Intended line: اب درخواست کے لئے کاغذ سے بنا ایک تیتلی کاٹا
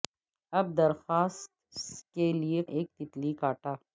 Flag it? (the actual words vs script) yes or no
yes